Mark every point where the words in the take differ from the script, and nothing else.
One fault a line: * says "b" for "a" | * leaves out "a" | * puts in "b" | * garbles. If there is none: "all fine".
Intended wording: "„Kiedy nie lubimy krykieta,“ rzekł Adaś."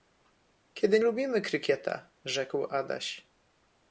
* leaves out "nie"